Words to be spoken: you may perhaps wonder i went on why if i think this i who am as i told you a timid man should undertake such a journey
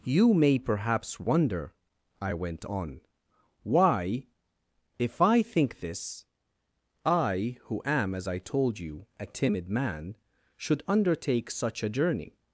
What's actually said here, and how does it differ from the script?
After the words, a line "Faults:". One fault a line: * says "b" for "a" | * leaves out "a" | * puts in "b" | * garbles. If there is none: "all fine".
you may perhaps wonder i went on why if i think this i who am as i told you a timid man should undertake such a journey
Faults:
all fine